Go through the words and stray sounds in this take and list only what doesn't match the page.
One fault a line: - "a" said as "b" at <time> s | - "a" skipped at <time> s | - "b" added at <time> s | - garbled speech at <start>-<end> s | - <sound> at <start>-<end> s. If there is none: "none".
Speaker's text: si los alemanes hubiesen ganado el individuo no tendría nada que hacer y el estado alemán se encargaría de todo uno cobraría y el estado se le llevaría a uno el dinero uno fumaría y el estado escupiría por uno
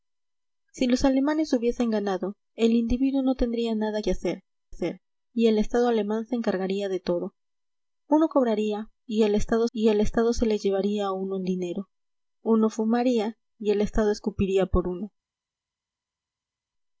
- "hacer" added at 4.7 s
- "y el estado" added at 9.7 s